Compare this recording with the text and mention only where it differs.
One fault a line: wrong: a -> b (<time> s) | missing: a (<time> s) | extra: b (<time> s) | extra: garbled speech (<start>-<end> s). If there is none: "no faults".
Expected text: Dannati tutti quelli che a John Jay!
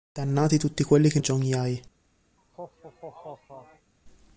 no faults